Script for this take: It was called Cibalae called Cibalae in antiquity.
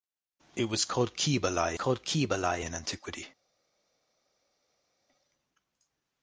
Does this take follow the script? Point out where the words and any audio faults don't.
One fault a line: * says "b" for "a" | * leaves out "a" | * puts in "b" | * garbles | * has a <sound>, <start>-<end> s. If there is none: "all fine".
all fine